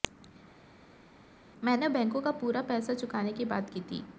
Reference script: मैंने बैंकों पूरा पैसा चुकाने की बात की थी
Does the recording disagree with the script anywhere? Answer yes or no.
yes